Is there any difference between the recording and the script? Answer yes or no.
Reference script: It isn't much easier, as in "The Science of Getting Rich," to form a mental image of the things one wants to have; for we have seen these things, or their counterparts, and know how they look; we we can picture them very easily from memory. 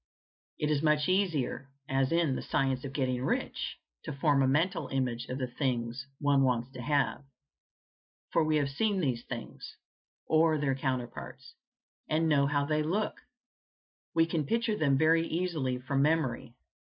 yes